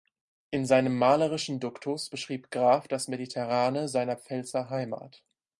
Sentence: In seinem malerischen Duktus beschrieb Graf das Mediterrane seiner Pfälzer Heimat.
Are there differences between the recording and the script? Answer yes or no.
no